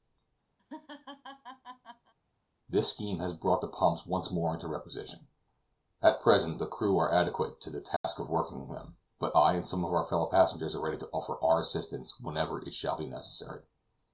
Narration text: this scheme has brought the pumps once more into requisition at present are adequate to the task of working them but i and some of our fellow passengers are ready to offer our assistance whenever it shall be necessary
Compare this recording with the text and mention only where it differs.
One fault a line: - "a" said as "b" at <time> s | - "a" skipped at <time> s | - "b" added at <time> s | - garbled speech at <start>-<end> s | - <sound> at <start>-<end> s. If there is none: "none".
- laugh at 0.6-2.1 s
- "the crew" added at 6.6 s
- dropout at 8.0-8.0 s